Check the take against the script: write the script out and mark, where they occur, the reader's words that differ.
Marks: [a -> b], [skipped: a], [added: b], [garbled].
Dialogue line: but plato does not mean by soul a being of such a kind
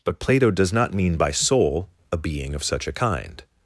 but plato does not mean by soul a being of such a kind